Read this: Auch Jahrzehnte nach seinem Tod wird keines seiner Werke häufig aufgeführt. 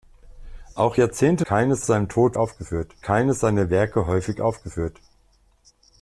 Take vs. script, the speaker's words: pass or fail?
fail